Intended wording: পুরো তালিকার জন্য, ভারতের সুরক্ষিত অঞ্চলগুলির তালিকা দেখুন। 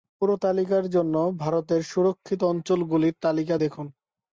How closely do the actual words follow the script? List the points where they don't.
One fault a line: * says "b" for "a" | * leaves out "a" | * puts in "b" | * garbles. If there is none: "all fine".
all fine